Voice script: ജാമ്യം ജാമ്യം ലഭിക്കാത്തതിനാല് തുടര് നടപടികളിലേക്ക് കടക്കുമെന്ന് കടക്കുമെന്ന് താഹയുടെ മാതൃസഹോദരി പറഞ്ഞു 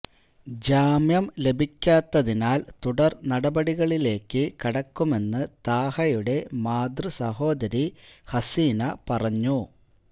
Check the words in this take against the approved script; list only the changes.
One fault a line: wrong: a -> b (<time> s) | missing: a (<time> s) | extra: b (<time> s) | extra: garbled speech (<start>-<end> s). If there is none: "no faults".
missing: ജാമ്യം (1.2 s)
missing: കടക്കുമെന്ന് (5.4 s)
extra: ഹസീന (8.3 s)